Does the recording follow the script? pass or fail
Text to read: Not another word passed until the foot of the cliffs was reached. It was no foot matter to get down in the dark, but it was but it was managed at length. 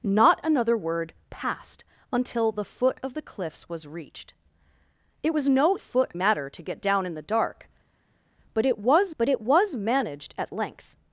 pass